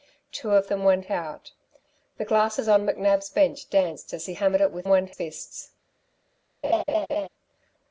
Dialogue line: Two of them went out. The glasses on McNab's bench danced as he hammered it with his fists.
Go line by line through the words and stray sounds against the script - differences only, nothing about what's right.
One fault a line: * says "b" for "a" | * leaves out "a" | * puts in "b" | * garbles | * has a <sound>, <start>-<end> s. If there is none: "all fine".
* says "went" for "his"
* has a laugh, 6.6-7.3 s